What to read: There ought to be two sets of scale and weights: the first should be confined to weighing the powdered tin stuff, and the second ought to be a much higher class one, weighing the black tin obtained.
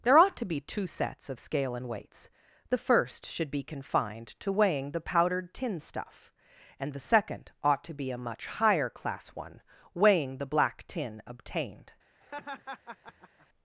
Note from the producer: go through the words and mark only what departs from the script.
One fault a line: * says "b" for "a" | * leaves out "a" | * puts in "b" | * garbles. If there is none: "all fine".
all fine